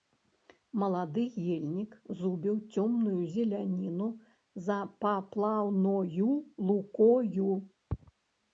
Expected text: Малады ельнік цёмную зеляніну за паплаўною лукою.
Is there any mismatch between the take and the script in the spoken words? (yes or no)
yes